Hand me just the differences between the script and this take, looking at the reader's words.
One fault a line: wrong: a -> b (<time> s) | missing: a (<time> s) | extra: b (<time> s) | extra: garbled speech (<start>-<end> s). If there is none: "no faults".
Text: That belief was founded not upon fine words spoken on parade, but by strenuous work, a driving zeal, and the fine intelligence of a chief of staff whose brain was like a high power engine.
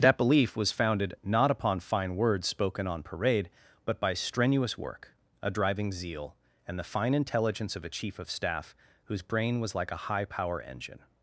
no faults